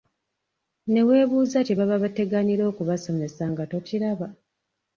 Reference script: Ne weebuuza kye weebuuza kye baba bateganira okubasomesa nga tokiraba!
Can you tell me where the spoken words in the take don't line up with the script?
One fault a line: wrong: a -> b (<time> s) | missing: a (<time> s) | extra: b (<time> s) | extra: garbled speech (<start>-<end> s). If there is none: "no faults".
missing: weebuuza kye (1.7 s)